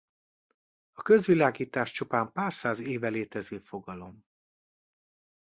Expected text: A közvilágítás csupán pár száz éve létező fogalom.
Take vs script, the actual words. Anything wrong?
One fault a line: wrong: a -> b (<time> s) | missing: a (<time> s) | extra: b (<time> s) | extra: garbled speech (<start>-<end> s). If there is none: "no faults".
no faults